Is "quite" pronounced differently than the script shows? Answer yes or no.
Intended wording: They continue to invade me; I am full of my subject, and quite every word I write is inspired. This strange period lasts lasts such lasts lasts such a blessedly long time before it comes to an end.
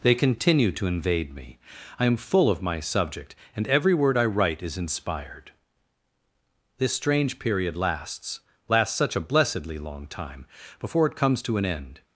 yes